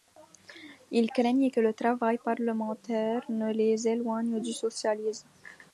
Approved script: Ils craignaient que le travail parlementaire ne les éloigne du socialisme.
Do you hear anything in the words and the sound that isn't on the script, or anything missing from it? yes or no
no